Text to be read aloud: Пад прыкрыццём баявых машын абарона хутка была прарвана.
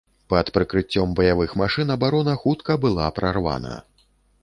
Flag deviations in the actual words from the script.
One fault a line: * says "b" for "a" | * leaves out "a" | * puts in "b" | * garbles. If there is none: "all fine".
all fine